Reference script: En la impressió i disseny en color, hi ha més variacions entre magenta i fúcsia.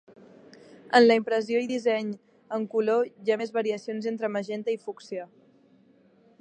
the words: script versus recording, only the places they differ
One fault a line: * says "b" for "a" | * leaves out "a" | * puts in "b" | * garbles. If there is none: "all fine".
all fine